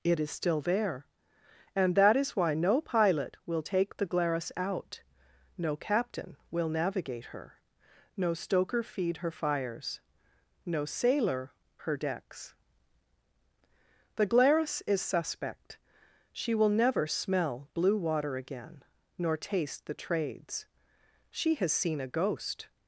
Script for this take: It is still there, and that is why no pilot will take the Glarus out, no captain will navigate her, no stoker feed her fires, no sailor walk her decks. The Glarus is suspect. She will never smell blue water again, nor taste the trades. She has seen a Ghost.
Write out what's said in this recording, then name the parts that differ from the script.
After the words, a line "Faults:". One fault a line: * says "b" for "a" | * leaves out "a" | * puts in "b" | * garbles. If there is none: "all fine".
It is still there, and that is why no pilot will take the Glarus out, no captain will navigate her, no stoker feed her fires, no sailor her decks. The Glarus is suspect. She will never smell blue water again, nor taste the trades. She has seen a Ghost.
Faults:
* leaves out "walk"